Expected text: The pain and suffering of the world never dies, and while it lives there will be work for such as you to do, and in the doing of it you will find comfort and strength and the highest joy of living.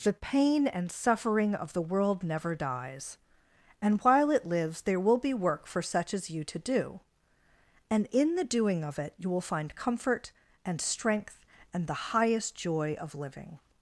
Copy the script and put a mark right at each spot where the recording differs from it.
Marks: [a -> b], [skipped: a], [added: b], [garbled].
The pain and suffering of the world never dies, and while it lives there will be work for such as you to do, and in the doing of it you will find comfort and strength and the highest joy of living.